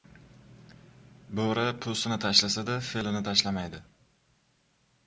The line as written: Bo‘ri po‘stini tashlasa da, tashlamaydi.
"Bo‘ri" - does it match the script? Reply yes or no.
yes